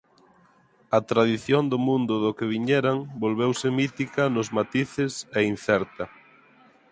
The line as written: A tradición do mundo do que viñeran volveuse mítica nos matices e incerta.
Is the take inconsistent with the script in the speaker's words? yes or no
no